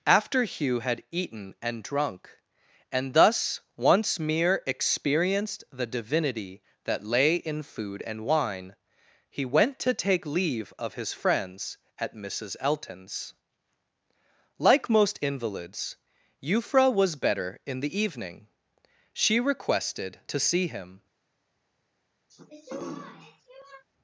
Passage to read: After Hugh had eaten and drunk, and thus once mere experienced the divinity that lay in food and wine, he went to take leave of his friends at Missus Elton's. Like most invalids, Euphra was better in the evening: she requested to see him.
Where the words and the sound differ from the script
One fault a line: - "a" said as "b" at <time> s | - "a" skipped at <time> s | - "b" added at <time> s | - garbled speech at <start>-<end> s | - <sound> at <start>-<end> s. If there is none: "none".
- throat clearing at 22.3-23.8 s